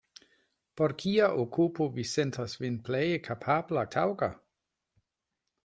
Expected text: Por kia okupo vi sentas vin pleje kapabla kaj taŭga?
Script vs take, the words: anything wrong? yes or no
yes